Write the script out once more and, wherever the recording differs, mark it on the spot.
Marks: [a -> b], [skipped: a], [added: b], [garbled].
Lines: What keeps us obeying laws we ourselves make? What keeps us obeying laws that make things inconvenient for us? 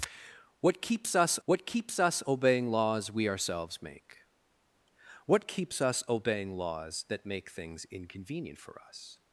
What keeps us [added: what keeps us] obeying laws we ourselves make? What keeps us obeying laws that make things inconvenient for us?